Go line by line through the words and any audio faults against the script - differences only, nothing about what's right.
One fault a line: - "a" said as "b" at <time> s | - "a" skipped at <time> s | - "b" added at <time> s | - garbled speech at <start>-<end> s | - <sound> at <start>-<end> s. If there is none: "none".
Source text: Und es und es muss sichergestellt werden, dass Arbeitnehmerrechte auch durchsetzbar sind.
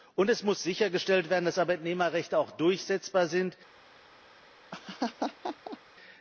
- "und es" skipped at 0.4 s
- laugh at 4.7-5.8 s